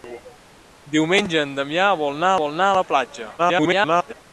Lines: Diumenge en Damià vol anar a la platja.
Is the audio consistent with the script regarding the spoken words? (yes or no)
no